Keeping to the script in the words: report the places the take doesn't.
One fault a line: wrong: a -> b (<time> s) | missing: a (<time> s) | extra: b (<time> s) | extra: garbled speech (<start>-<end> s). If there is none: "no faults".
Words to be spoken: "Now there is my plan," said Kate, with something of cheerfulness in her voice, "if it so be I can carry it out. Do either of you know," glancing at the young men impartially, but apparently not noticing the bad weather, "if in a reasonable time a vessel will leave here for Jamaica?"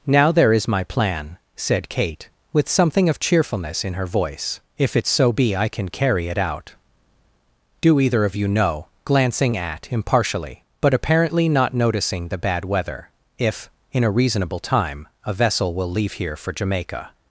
missing: the young men (9.9 s)